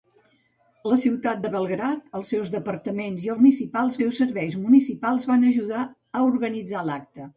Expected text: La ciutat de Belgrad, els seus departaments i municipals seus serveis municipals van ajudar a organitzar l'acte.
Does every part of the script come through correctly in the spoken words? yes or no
yes